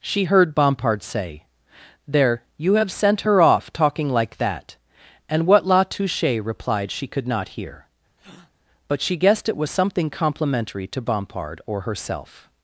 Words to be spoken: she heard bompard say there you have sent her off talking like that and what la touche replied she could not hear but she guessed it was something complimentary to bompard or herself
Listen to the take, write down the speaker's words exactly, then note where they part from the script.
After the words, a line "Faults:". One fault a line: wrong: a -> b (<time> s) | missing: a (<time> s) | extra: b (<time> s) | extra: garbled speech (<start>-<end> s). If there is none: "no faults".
she heard bompard say there you have sent her off talking like that and what la touche replied she could not hear but she guessed it was something complimentary to bompard or herself
Faults:
no faults